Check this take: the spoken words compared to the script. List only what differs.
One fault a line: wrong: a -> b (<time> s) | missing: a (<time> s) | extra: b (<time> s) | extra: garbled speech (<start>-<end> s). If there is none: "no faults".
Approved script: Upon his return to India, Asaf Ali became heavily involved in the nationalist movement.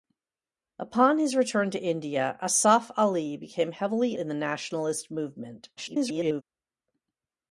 missing: involved (4.2 s)
extra: garbled speech (5.8-6.4 s)